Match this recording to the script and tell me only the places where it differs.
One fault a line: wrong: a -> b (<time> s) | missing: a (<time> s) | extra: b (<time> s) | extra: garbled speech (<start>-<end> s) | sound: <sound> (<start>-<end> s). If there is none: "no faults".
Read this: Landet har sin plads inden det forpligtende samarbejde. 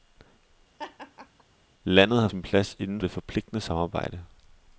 sound: laugh (0.8-1.4 s)